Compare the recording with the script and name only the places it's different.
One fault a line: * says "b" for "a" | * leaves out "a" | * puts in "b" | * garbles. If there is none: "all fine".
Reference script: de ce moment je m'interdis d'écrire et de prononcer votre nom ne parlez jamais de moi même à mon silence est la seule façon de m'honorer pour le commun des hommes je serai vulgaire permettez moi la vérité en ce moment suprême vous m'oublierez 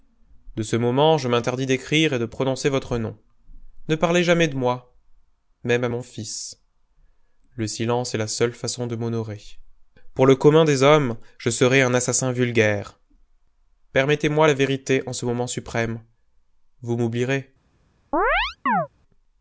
* puts in "fils le"
* puts in "un assassin"